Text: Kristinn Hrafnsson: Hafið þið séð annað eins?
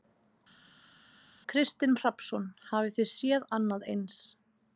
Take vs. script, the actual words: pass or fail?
pass